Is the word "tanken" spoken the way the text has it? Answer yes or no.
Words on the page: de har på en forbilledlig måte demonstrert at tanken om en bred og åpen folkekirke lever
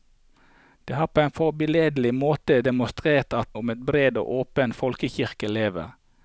no